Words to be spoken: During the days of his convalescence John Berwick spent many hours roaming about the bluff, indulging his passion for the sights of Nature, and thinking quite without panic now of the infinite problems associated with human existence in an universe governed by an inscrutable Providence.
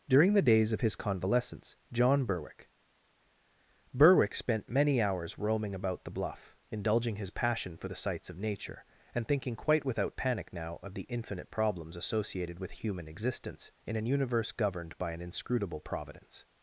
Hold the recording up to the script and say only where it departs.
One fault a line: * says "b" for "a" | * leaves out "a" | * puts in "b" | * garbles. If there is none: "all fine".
* puts in "Berwick"